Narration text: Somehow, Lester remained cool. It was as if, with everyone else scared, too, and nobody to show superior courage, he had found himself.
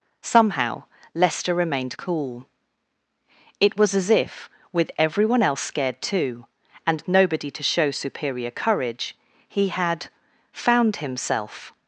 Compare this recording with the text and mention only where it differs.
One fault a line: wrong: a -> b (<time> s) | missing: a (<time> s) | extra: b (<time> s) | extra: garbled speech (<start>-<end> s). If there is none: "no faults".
no faults